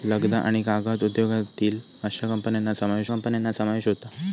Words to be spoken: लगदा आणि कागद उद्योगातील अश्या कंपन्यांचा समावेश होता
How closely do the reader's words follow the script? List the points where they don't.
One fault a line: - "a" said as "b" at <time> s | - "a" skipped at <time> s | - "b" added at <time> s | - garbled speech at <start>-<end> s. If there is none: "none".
- "कंपन्यांचा समावेश" added at 3.1 s